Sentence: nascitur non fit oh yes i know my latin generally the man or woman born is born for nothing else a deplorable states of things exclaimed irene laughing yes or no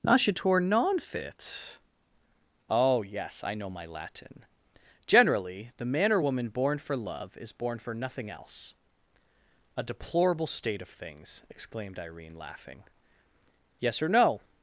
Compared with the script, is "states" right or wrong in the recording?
wrong